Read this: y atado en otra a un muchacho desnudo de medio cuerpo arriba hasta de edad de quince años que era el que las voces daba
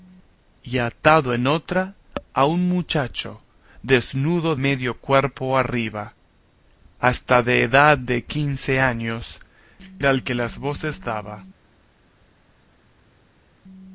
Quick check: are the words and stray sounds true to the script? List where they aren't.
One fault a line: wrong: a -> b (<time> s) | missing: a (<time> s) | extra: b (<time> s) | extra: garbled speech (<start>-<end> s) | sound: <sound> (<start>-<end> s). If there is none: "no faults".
missing: de (4.5 s)
missing: que (9.4 s)